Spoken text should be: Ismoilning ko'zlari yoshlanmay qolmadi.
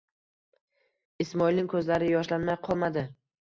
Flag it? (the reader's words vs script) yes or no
no